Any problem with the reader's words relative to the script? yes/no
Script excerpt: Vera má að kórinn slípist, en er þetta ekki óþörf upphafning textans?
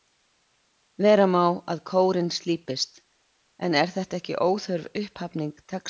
no